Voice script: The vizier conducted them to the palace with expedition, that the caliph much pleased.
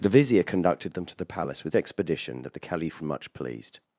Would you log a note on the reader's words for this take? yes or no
no